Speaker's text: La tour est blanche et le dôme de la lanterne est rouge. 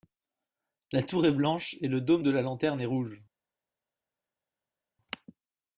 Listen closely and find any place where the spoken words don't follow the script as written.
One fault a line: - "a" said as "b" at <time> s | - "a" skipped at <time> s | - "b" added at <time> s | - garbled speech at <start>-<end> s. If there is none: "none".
none